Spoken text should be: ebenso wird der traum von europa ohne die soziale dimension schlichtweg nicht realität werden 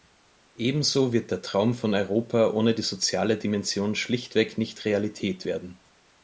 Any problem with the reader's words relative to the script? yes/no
no